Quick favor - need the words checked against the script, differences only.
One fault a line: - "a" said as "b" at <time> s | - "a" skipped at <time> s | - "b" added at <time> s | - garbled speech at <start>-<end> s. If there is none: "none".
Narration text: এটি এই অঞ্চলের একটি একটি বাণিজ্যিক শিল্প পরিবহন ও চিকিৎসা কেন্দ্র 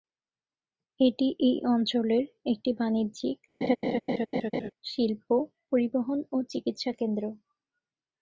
- "একটি" skipped at 2.7 s